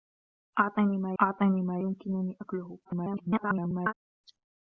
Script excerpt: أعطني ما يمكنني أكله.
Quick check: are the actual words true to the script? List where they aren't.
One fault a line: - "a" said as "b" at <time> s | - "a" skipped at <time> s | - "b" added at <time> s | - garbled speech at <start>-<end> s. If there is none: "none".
- "أعطني ما" added at 1.2 s
- garbled speech at 2.9-3.9 s